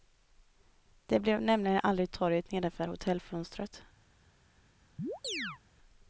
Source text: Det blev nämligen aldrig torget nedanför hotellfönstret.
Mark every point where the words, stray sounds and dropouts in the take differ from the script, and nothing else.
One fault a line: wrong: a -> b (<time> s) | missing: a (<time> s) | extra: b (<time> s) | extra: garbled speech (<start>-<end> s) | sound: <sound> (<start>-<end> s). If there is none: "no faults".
sound: chirp (5.0-5.6 s)